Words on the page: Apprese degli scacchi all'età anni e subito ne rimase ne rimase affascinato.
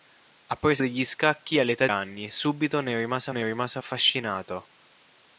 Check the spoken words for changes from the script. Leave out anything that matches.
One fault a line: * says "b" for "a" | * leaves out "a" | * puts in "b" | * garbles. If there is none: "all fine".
all fine